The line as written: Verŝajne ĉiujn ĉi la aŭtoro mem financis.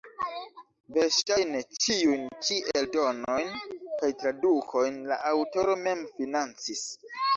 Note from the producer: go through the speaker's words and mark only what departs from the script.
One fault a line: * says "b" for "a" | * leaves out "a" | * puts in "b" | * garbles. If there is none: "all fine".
* puts in "eldonojn kaj tradukojn"